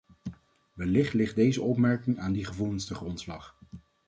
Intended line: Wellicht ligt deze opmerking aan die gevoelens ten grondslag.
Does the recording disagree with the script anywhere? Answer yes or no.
no